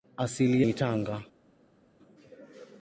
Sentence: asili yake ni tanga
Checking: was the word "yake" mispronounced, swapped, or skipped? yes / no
yes